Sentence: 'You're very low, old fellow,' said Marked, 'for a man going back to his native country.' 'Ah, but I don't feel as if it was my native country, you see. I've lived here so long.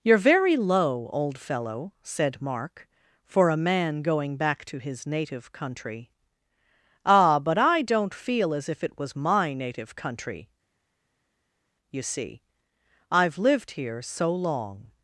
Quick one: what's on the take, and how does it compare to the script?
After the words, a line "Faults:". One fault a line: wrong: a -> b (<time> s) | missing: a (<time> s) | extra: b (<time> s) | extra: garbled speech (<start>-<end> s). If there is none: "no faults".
'You're very low, old fellow,' said Mark, 'for a man going back to his native country.' 'Ah, but I don't feel as if it was my native country, you see. I've lived here so long.
Faults:
wrong: Marked -> Mark (2.4 s)